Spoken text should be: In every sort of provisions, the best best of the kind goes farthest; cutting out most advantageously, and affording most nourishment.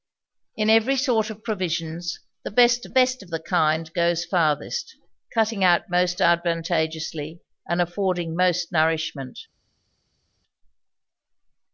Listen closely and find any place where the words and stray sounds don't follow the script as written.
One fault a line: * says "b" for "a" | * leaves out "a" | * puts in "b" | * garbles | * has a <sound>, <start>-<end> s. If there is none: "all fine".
all fine